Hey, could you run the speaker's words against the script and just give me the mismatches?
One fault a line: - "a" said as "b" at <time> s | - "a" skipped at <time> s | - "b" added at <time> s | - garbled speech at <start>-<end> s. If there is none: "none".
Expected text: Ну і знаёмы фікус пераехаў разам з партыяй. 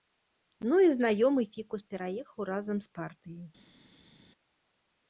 none